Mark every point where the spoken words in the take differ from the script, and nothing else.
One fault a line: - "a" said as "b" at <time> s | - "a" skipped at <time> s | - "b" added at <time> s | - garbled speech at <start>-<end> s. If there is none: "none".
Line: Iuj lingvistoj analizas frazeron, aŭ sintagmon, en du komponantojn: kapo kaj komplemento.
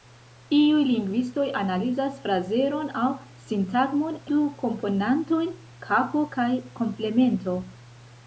- "en" skipped at 4.2 s